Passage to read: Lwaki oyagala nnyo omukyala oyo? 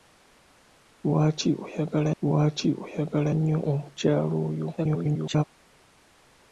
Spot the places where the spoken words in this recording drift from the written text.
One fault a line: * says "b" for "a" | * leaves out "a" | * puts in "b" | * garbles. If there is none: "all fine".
* puts in "lwaki oyagala"
* garbles